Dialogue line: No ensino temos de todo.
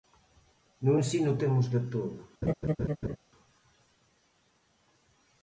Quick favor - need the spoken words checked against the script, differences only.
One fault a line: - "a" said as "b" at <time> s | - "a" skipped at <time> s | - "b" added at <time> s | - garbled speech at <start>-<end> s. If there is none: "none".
none